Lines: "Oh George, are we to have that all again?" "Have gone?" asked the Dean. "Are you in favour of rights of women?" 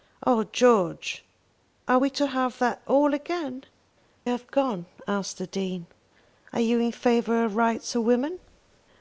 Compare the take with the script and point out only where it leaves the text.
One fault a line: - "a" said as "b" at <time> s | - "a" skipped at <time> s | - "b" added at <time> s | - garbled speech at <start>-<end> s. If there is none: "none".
none